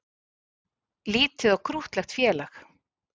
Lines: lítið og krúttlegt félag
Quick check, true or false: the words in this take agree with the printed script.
true